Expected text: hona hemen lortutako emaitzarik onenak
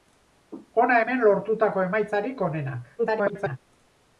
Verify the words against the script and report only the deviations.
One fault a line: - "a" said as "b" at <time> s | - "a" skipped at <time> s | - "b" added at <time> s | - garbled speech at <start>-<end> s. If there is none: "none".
- garbled speech at 3.0-3.6 s